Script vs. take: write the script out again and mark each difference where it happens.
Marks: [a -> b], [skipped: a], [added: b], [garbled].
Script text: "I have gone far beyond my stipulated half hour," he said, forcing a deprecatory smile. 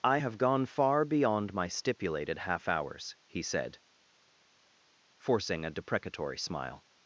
"I have gone far beyond my stipulated half [hour," -> hours] he said, forcing a deprecatory smile.